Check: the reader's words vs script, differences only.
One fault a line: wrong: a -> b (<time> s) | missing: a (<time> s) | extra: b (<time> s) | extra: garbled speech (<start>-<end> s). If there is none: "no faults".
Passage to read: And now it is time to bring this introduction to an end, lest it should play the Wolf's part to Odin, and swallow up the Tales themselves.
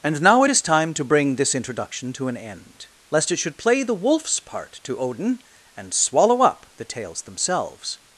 no faults